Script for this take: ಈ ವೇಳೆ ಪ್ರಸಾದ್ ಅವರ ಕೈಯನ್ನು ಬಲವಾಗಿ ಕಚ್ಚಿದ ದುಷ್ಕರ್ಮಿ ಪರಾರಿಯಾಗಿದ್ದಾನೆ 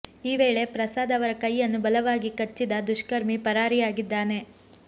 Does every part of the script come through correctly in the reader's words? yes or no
yes